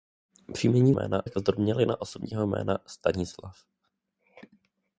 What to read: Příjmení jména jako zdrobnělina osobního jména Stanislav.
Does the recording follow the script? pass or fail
pass